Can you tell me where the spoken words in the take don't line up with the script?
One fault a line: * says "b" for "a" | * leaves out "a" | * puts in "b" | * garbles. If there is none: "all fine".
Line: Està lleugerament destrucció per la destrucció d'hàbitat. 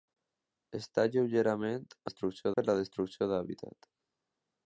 all fine